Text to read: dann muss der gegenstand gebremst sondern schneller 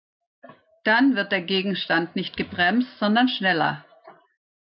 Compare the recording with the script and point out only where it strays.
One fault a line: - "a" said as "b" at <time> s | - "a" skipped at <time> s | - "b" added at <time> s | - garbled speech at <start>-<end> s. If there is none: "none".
- "muss" said as "wird" at 1.1 s
- "nicht" added at 2.1 s